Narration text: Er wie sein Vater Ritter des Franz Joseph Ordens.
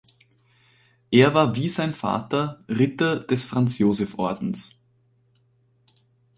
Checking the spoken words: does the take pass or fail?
fail